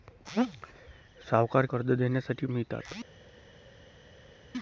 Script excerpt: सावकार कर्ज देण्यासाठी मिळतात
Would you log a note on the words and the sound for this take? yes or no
no